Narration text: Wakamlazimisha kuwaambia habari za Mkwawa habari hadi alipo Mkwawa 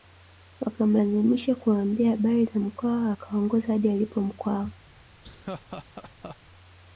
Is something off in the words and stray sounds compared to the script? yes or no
yes